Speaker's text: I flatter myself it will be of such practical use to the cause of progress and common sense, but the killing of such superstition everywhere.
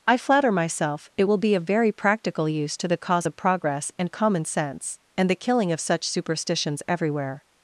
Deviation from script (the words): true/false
true